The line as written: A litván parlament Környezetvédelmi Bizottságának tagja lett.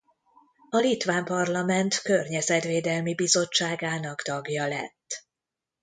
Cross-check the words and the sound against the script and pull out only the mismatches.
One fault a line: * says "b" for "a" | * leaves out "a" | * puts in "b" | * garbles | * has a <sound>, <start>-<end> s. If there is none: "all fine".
all fine